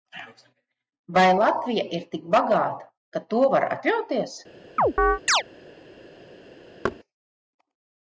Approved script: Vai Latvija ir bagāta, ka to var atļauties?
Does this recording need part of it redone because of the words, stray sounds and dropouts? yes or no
yes